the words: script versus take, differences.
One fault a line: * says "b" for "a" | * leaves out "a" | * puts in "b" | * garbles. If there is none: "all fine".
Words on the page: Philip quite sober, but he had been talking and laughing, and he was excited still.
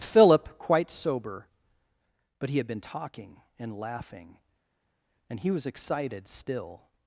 all fine